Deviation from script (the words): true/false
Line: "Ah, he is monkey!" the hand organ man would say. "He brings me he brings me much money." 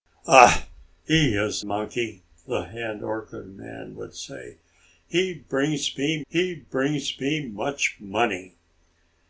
false